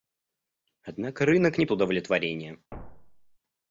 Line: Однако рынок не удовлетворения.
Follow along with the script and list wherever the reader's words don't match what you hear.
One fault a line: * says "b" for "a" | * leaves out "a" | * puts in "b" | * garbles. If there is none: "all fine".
all fine